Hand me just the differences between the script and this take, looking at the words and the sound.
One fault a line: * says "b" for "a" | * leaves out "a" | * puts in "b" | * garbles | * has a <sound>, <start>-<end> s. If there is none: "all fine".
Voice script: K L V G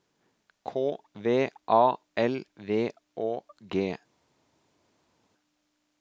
* puts in "V A"
* puts in "Å"